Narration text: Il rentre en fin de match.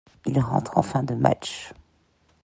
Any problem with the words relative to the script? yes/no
no